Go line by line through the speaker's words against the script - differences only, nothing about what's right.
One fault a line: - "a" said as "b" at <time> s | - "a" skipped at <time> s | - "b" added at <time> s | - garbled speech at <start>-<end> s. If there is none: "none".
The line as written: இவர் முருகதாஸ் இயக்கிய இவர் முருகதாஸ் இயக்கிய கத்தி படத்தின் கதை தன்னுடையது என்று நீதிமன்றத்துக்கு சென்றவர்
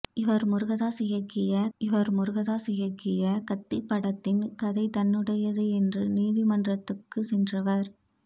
none